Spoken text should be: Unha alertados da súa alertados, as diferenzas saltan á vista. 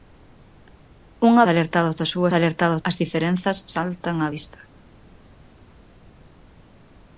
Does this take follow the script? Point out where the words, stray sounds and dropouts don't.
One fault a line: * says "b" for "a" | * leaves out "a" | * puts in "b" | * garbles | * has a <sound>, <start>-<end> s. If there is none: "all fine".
all fine